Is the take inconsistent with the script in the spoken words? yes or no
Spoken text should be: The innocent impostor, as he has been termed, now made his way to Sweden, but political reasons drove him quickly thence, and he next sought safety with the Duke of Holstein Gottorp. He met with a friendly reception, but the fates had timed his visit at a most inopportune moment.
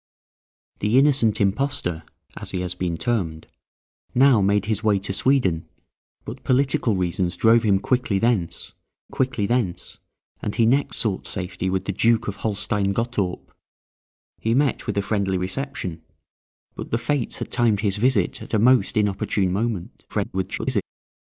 yes